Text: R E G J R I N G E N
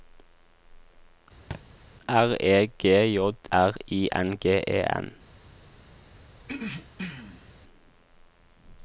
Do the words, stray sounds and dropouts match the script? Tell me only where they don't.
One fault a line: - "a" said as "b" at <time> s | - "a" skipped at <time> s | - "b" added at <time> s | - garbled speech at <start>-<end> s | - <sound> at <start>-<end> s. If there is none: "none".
- thud at 1.5-1.6 s
- throat clearing at 6.4-7.5 s